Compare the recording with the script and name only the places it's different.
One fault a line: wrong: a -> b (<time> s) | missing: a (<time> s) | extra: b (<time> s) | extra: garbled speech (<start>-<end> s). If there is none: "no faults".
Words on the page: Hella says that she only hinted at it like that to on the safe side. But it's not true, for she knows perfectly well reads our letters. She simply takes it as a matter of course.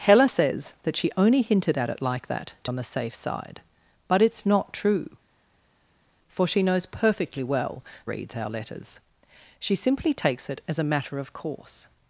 no faults